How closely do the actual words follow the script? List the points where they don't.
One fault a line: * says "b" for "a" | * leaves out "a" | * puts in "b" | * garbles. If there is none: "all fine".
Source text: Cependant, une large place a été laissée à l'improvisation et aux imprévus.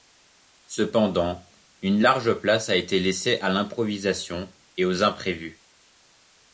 all fine